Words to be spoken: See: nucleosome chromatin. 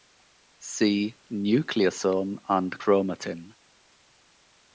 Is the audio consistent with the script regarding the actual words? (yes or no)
no